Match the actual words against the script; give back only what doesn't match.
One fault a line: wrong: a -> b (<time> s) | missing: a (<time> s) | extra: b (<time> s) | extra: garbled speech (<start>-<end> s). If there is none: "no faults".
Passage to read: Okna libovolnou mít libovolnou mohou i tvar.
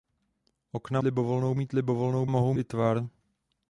no faults